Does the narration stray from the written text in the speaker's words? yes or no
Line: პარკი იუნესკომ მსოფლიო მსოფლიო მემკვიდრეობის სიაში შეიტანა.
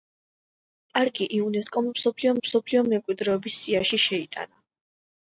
no